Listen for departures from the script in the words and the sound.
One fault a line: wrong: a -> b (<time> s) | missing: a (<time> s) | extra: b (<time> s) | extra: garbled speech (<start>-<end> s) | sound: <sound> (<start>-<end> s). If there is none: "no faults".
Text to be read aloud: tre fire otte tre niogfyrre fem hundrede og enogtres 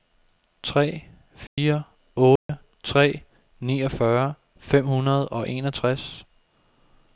sound: dropout (1.5-1.6 s)
sound: dropout (2.4-2.5 s)